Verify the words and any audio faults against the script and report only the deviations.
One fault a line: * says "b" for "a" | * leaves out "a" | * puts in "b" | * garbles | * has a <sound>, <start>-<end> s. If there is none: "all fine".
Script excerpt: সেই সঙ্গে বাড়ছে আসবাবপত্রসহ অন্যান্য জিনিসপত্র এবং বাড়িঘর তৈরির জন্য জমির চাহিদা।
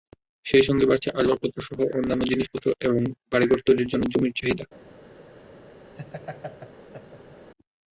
* has a laugh, 6.0-7.5 s